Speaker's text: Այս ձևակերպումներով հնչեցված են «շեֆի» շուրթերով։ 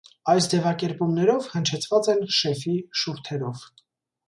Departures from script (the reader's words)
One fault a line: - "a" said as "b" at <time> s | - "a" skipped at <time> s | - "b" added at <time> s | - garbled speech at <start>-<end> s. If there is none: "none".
none